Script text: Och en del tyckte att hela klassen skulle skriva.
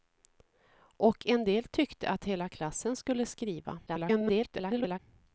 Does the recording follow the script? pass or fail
fail